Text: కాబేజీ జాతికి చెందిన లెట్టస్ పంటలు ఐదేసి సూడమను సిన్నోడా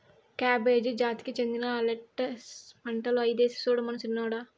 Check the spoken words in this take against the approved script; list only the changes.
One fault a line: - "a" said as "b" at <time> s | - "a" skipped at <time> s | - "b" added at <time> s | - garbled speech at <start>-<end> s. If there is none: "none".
none